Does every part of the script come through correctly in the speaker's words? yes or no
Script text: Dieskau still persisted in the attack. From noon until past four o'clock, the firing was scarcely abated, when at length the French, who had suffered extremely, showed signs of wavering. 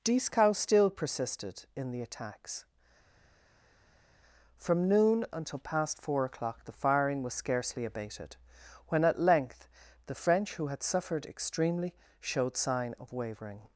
no